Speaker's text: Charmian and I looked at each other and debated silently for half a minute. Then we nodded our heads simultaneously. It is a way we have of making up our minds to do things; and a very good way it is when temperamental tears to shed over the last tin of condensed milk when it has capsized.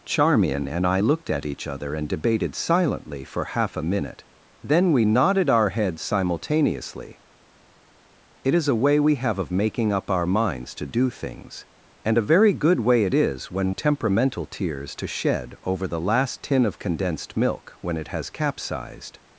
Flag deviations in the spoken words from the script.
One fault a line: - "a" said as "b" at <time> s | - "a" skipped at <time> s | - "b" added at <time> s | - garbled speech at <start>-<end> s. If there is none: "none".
none